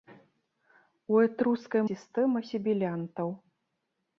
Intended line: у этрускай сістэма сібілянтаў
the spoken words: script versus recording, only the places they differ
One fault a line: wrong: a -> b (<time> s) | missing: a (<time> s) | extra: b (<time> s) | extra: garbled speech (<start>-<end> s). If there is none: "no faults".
no faults